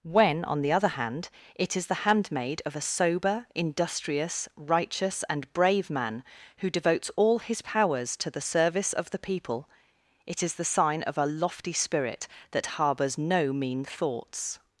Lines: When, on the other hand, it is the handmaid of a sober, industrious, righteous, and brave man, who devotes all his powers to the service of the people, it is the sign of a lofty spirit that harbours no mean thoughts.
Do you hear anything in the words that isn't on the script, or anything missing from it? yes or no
no